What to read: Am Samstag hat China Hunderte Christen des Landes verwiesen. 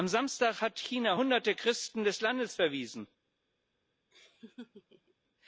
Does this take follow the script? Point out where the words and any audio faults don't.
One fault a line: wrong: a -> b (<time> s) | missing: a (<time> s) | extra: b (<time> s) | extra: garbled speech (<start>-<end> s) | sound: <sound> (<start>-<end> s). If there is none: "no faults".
sound: laugh (4.1-5.1 s)